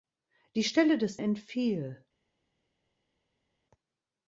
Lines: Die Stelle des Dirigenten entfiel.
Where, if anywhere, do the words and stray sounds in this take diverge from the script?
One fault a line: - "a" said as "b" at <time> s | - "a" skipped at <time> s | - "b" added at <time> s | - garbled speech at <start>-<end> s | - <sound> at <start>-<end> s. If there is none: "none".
- "Dirigenten" skipped at 1.2 s